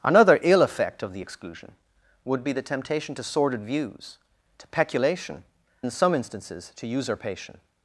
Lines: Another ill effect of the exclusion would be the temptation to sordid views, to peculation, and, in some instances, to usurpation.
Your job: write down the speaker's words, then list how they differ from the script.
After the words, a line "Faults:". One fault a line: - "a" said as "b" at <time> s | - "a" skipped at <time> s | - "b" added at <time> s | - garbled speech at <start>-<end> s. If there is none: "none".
Another ill effect of the exclusion would be the temptation to sordid views, to peculation, in some instances, to usurpation.
Faults:
- "and" skipped at 5.4 s